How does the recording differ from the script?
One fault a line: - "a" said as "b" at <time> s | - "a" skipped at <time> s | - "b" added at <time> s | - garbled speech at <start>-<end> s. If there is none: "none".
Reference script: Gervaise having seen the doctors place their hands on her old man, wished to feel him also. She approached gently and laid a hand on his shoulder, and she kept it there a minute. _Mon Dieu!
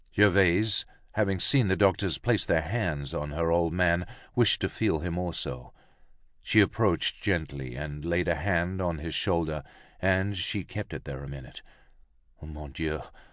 none